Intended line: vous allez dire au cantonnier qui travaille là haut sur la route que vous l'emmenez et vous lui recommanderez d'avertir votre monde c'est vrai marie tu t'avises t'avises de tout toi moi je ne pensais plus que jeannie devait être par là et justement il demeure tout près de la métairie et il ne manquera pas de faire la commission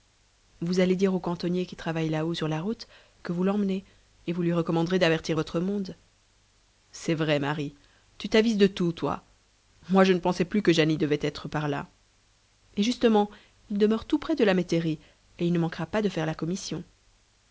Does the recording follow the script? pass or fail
fail